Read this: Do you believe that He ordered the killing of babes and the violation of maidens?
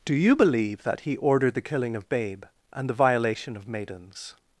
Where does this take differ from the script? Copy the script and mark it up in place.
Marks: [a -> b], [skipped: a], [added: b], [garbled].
Do you believe that He ordered the killing of [babes -> babe] and the violation of maidens?